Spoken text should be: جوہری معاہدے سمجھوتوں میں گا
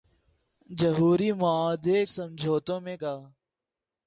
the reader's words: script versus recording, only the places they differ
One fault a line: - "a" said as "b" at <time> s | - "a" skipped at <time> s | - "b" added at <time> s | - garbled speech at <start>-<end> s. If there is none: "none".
none